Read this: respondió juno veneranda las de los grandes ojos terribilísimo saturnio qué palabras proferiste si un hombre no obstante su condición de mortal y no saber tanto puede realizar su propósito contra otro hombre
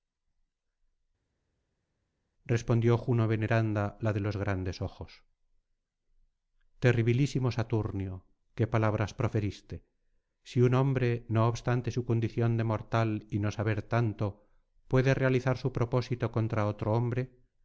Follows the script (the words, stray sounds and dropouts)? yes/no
no